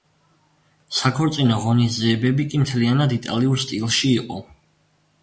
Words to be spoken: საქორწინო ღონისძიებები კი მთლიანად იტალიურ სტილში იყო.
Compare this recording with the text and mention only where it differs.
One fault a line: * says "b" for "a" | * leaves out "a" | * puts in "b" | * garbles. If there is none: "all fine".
all fine